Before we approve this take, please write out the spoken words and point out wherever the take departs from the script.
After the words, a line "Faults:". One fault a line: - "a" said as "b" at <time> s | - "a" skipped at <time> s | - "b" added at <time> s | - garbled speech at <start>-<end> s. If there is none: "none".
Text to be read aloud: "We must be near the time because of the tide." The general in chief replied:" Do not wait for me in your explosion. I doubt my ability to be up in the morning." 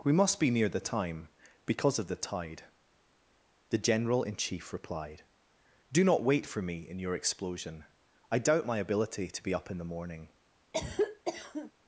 "We must be near the time because of the tide." The general in chief replied:" Do not wait for me in your explosion. I doubt my ability to be up in the morning."
Faults:
none